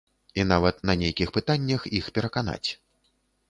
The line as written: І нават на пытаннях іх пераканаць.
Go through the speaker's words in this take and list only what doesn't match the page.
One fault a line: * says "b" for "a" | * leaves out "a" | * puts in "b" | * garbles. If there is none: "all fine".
* puts in "нейкіх"